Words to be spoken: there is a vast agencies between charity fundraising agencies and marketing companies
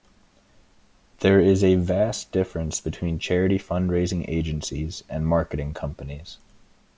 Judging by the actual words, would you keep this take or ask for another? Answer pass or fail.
fail